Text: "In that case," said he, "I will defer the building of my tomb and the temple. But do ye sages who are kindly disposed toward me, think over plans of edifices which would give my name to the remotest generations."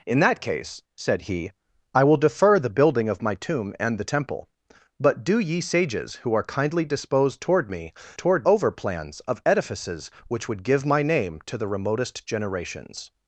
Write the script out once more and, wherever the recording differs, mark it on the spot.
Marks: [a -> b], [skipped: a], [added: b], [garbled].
"In that case," said he, "I will defer the building of my tomb and the temple. But do ye sages who are kindly disposed toward me, [think -> toward] over plans of edifices which would give my name to the remotest generations."